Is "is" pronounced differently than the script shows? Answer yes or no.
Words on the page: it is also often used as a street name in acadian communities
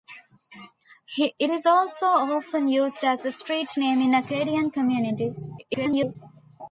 no